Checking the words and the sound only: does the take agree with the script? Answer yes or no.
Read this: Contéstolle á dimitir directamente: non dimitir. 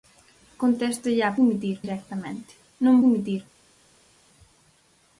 yes